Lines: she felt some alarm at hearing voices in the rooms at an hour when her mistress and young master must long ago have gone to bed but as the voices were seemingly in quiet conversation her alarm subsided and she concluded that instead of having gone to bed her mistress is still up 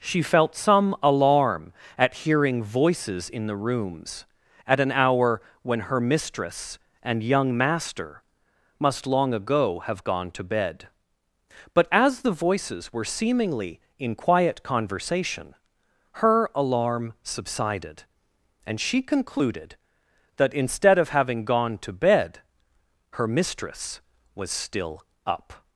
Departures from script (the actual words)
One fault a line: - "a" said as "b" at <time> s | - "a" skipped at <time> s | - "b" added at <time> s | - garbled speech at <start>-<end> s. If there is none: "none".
- "is" said as "was" at 24.3 s